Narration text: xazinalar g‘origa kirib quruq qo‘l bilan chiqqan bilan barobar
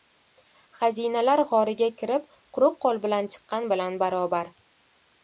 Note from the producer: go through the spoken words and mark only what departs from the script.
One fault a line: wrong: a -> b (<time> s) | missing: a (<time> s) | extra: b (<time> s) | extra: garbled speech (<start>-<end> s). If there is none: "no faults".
no faults